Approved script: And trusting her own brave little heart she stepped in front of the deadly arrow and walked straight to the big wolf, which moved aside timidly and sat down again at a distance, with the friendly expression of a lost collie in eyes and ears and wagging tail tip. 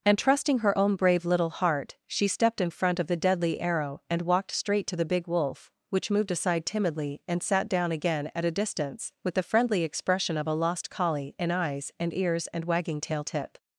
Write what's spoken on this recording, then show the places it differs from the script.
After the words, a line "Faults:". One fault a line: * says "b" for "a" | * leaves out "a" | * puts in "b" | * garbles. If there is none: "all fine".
And trusting her own brave little heart she stepped in front of the deadly arrow and walked straight to the big wolf, which moved aside timidly and sat down again at a distance, with the friendly expression of a lost collie in eyes and ears and wagging tail tip.
Faults:
all fine